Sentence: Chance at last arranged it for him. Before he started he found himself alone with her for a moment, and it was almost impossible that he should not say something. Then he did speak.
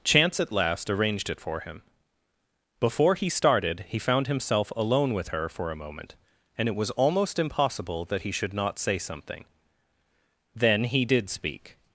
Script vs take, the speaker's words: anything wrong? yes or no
no